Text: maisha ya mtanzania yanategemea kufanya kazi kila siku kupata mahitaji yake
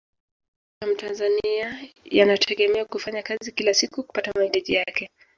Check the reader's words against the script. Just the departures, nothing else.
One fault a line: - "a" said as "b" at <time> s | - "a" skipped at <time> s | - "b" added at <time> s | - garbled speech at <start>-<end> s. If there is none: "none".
none